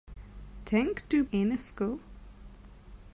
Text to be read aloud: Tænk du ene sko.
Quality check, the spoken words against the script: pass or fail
pass